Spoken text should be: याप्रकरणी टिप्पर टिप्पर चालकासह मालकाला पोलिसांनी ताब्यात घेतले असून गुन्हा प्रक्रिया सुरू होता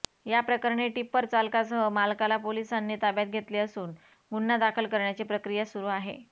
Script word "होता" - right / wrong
wrong